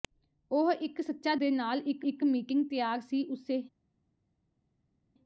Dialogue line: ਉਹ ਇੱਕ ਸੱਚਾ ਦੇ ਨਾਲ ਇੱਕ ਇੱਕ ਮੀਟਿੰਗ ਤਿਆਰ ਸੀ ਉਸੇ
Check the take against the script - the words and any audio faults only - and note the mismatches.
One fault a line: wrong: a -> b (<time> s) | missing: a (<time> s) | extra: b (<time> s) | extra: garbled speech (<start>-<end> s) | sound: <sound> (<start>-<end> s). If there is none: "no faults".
no faults